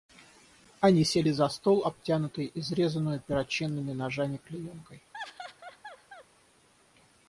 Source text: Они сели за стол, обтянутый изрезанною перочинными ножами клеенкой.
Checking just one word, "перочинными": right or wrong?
right